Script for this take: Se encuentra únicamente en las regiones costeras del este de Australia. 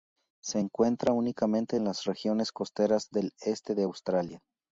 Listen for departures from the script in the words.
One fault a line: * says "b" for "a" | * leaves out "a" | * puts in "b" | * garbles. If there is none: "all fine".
all fine